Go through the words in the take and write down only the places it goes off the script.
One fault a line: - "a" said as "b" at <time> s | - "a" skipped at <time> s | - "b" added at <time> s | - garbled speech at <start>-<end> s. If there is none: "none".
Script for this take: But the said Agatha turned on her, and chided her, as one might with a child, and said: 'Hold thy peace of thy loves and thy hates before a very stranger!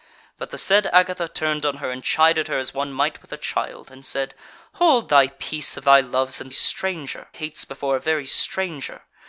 - "thy" said as "stranger" at 6.5 s